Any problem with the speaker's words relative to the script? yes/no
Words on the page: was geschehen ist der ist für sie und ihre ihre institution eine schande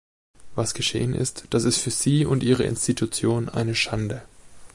yes